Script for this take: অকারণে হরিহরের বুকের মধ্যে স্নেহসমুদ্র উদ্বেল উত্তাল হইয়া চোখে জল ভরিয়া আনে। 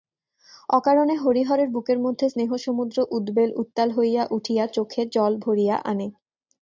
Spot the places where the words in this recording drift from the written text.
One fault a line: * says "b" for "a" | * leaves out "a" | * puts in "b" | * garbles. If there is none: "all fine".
* puts in "উঠিয়া"